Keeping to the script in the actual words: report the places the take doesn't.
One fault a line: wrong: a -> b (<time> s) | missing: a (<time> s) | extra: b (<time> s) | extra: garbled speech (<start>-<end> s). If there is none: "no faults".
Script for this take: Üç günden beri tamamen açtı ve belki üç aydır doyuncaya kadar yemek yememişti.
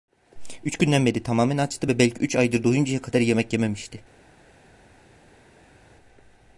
no faults